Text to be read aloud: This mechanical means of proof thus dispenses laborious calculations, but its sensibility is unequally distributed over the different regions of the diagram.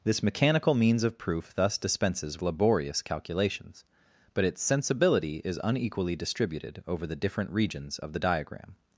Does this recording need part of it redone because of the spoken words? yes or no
no